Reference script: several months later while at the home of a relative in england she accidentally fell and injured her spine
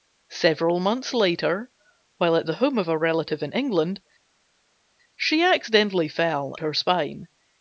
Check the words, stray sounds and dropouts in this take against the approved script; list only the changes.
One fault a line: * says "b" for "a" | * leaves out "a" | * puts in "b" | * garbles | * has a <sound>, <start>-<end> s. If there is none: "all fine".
* leaves out "and injured"